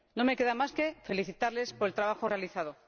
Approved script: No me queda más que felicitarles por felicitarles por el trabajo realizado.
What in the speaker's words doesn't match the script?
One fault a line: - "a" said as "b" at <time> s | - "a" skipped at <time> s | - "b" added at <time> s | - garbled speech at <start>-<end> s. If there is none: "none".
- "felicitarles por" skipped at 1.9 s